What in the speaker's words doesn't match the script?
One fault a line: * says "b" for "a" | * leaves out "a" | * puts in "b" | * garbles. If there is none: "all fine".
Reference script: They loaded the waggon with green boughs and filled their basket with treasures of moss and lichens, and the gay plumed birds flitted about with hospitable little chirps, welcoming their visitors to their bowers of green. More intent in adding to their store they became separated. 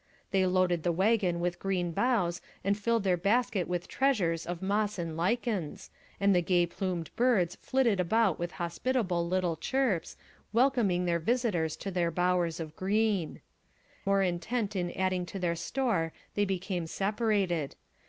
all fine